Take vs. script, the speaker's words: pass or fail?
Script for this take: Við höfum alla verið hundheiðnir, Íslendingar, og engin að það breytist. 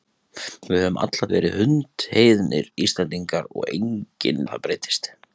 pass